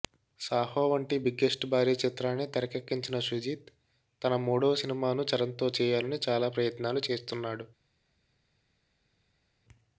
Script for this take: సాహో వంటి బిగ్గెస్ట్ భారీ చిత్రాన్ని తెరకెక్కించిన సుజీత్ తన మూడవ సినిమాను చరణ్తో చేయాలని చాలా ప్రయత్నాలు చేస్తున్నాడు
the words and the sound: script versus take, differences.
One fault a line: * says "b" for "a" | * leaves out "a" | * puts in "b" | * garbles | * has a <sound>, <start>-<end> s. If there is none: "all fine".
all fine